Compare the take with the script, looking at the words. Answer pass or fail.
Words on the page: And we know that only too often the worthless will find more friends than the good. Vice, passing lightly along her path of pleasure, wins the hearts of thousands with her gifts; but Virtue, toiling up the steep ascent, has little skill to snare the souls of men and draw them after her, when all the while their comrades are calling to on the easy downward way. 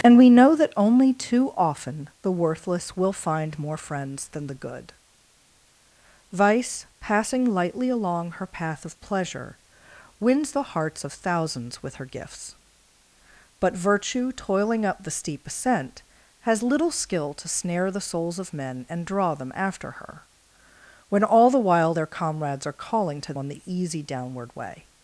pass